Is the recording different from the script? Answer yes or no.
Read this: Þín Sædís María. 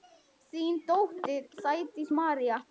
yes